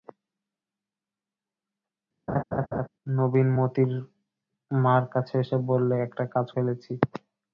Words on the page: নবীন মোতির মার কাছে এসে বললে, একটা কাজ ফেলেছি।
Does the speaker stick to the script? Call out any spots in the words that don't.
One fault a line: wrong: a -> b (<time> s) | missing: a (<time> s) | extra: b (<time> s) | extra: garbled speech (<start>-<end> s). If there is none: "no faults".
no faults